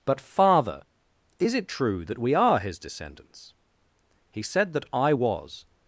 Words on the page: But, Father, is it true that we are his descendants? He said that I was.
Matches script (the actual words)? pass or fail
pass